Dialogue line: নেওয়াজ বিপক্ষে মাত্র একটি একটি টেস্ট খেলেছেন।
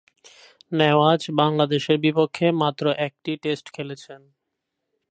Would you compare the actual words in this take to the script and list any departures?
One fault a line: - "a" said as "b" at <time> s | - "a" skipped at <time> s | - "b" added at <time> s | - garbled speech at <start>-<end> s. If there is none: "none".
- "বাংলাদেশের" added at 1.4 s
- "একটি" skipped at 3.3 s